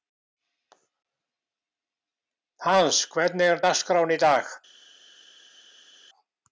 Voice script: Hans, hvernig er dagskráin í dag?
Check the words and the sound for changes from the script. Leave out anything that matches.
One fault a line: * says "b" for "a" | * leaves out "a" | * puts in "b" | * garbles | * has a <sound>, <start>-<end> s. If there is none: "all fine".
all fine